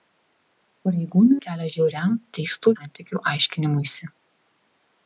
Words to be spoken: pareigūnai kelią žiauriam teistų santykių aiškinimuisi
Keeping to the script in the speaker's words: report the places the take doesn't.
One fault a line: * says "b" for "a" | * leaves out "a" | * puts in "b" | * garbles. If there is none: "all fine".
all fine